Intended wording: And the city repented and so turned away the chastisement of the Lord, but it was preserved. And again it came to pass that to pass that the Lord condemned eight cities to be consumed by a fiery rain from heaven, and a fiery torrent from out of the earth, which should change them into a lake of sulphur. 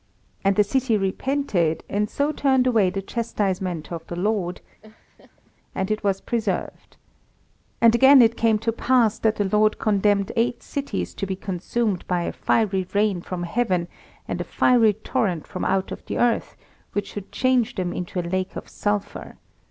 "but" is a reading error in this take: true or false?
true